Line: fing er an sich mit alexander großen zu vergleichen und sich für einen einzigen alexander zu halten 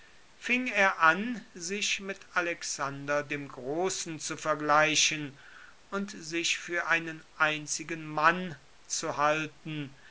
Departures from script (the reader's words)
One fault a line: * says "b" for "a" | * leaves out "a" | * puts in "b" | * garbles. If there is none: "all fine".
* puts in "dem"
* says "mann" for "alexander"